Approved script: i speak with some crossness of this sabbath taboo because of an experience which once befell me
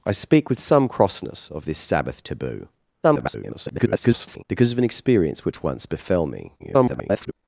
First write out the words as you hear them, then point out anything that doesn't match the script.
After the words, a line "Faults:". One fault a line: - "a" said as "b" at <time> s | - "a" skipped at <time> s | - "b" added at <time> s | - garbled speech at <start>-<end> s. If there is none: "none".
i speak with some crossness of this sabbath taboo [garbled] because of an experience which once befell me [garbled]
Faults:
- garbled speech at 3.0-4.4 s
- garbled speech at 6.6-7.3 s